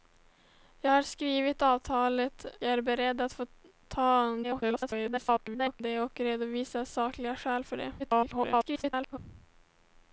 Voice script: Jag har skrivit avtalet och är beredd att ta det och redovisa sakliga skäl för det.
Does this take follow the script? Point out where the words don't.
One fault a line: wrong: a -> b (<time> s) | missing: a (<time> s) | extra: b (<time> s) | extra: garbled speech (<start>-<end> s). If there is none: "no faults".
missing: och (2.4 s)
extra: garbled speech (4.4-5.8 s)
extra: garbled speech (8.0-9.2 s)